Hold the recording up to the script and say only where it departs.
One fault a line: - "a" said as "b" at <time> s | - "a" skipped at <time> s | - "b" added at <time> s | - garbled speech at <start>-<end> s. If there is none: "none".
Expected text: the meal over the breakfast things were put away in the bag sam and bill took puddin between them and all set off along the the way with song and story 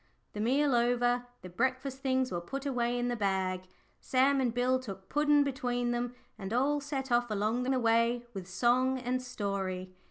none